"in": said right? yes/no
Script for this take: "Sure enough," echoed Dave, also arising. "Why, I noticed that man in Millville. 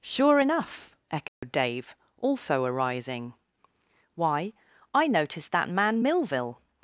no